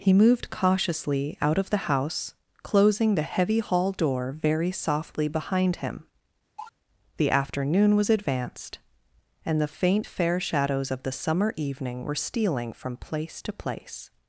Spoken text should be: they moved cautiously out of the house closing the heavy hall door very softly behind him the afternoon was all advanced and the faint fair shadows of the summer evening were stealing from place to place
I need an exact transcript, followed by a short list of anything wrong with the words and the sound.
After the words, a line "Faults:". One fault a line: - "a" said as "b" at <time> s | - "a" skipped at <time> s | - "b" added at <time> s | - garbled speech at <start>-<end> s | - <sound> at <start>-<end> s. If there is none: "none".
he moved cautiously out of the house closing the heavy hall door very softly behind him the afternoon was advanced and the faint fair shadows of the summer evening were stealing from place to place
Faults:
- "they" said as "he" at 0.0 s
- cough at 6.6-6.7 s
- "all" skipped at 8.1 s